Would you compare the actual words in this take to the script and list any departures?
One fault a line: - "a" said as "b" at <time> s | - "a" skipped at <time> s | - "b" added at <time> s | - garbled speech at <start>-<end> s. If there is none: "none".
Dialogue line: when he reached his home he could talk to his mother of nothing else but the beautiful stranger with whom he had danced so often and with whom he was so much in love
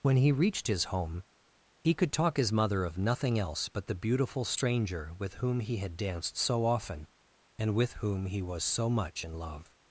- "to" skipped at 2.4 s